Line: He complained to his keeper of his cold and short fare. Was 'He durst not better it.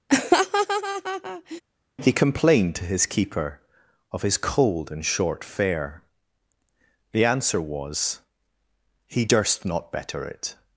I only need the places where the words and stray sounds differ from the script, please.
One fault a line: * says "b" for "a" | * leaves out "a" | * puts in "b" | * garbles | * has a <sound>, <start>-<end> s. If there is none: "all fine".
* has a laugh, 0.1-1.6 s
* puts in "The answer"